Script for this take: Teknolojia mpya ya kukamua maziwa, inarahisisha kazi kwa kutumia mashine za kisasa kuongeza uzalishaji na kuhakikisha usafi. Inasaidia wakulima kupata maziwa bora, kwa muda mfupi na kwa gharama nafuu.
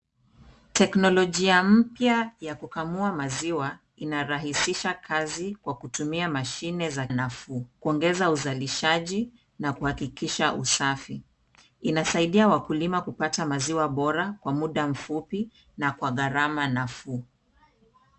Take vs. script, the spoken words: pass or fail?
fail